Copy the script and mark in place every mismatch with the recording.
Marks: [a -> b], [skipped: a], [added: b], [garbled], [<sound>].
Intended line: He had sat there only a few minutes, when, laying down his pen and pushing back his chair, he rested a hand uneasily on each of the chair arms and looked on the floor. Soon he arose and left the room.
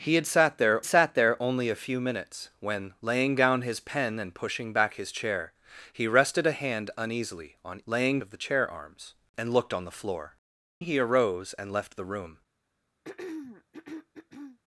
He had sat there [added: sat there] only a few minutes, when, laying down his pen and pushing back his chair, he rested a hand uneasily on [each -> laying] of the chair arms and looked on the floor. [skipped: Soon] he arose and left the room. [throat clearing]